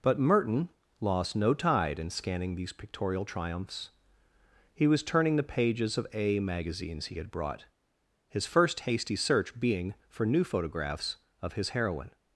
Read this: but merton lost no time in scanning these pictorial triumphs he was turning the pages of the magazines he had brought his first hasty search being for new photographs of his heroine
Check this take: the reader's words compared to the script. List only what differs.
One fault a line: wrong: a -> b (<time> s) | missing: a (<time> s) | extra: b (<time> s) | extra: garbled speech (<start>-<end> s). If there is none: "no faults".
wrong: time -> tide (1.5 s)
wrong: the -> a (6.1 s)